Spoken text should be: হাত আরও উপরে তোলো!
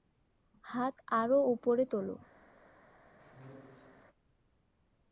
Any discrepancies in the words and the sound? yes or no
yes